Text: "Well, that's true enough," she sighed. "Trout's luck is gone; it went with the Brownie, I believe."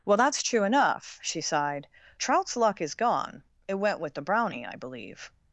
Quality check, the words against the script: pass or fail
pass